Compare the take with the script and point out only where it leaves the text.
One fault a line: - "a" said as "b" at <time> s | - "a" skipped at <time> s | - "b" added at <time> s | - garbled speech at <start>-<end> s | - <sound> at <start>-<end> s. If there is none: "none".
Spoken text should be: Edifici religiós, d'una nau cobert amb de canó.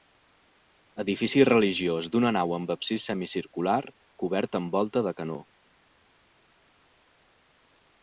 - "amb absis semicircular" added at 2.6 s
- "volta" added at 4.8 s